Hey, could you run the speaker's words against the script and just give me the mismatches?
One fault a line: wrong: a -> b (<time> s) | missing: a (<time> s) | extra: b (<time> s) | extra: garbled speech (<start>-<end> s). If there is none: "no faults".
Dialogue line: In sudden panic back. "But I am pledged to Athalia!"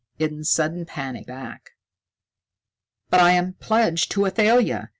no faults